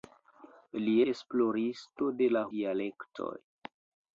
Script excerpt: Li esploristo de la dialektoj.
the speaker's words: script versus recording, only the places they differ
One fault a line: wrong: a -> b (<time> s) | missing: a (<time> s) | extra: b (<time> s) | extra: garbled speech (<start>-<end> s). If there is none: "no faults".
no faults